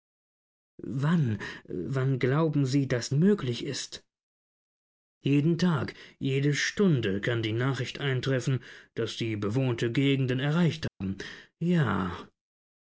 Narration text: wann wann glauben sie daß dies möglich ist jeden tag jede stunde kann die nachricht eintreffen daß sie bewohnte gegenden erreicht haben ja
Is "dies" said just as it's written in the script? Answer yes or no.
no